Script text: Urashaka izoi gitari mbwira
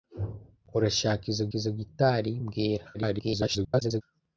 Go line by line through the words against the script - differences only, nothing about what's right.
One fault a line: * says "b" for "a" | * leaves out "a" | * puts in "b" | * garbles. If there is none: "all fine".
* puts in "izoi"
* garbles